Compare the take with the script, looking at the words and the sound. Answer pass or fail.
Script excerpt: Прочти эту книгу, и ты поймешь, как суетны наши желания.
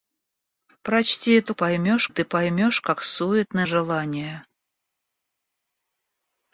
fail